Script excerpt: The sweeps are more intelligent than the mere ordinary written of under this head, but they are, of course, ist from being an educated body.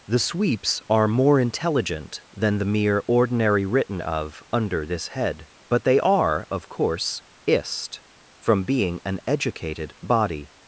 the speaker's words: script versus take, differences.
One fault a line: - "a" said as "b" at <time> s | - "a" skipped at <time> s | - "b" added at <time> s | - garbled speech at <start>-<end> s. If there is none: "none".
none